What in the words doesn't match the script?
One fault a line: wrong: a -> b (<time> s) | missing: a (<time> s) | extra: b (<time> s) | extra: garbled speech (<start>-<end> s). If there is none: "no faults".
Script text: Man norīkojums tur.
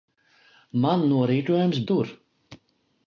no faults